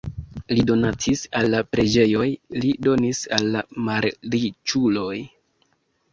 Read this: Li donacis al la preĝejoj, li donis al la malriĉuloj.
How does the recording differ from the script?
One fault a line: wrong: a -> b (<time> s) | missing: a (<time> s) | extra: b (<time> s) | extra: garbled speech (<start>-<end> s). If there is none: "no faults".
no faults